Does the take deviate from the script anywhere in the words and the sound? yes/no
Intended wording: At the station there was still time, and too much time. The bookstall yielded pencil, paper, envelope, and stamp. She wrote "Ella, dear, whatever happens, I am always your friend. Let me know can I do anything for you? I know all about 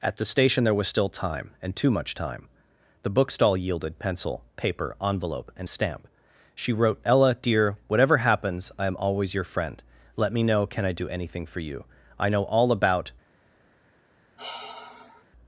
yes